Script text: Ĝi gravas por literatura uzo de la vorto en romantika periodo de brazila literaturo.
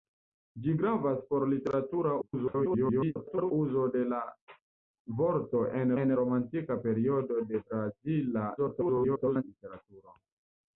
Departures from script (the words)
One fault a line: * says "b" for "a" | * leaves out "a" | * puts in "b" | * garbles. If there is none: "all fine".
* garbles
* puts in "en"
* garbles